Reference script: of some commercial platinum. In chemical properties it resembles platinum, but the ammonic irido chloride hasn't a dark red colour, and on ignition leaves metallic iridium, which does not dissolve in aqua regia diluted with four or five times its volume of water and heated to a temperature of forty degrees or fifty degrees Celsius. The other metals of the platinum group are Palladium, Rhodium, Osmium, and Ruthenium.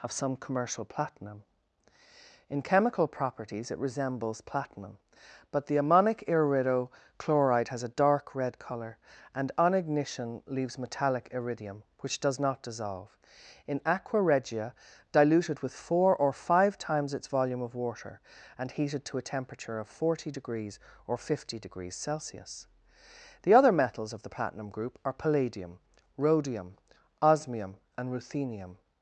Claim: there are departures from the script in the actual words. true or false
true